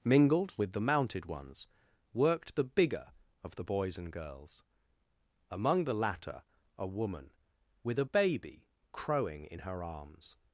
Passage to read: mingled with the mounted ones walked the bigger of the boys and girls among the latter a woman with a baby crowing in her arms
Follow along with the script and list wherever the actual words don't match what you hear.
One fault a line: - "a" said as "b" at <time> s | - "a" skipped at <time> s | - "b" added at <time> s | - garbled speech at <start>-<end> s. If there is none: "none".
- "walked" said as "worked" at 2.1 s